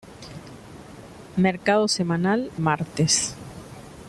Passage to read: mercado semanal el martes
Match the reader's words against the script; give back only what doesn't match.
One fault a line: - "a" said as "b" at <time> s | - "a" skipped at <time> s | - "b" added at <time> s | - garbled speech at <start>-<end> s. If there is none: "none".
- "el" skipped at 2.5 s